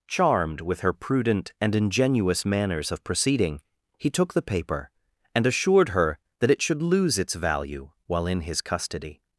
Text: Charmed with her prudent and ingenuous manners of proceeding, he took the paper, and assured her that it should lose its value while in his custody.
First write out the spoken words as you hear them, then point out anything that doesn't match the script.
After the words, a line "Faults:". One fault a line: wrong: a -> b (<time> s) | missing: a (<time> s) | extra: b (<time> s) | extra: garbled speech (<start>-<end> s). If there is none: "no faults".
Charmed with her prudent and ingenuous manners of proceeding, he took the paper, and assured her that it should lose its value while in his custody.
Faults:
no faults